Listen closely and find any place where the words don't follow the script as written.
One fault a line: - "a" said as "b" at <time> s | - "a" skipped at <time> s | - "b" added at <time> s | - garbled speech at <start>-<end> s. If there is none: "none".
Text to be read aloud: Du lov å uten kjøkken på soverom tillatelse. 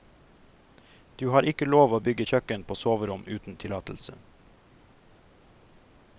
- "har ikke" added at 1.3 s
- "uten" said as "bygge" at 2.0 s
- "uten" added at 3.3 s